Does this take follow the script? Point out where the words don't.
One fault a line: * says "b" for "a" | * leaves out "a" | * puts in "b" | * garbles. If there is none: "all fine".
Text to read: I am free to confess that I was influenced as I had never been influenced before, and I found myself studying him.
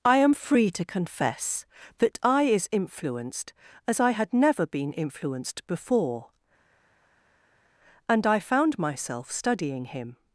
* says "is" for "was"